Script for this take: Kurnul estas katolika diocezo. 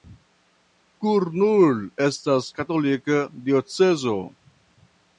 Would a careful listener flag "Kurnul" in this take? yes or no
no